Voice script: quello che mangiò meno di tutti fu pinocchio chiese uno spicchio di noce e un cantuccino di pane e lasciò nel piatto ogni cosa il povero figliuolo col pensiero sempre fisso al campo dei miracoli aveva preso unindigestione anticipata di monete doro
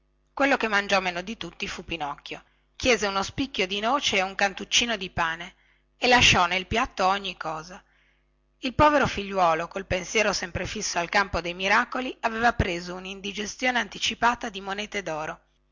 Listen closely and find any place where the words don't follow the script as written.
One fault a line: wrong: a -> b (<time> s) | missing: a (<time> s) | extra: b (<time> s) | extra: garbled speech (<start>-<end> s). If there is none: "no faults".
no faults